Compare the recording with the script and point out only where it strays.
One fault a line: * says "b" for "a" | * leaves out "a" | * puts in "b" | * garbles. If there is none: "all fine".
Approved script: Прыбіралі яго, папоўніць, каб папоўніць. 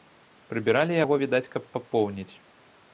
* says "відаць" for "папоўніць"